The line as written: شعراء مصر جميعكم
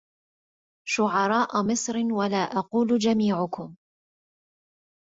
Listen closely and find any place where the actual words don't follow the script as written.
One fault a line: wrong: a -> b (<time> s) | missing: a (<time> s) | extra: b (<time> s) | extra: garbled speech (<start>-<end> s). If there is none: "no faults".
extra: ولا أقول (2.1 s)